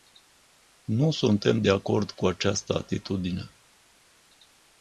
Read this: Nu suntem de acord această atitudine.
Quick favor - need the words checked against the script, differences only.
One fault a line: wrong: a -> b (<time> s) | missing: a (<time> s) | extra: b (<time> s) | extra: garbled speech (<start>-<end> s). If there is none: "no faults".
extra: cu (2.1 s)